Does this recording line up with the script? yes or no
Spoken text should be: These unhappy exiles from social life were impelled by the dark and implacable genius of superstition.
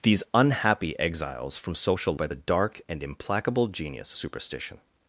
no